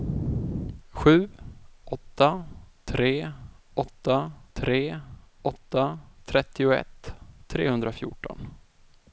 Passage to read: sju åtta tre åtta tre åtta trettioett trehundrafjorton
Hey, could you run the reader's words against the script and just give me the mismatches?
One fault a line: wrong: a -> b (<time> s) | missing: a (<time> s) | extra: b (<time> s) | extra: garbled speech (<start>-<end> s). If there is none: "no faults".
no faults